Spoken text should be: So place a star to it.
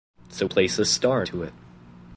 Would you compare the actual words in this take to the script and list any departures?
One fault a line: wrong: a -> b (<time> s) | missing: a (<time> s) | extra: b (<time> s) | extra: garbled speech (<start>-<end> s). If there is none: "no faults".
no faults